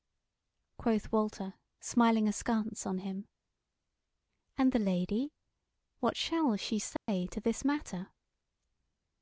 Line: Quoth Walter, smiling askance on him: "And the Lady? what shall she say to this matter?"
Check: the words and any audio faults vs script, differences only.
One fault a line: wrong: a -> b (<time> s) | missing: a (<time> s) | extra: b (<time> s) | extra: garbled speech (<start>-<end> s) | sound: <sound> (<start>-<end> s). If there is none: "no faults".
sound: dropout (7.0-7.1 s)